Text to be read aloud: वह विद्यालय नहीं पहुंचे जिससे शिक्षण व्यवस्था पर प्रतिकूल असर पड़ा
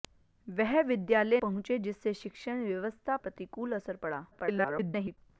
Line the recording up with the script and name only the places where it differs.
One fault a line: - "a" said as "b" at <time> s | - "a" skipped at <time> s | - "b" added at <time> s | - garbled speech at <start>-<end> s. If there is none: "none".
- "नहीं" skipped at 1.4 s
- "पर" skipped at 3.2 s
- garbled speech at 4.3-5.2 s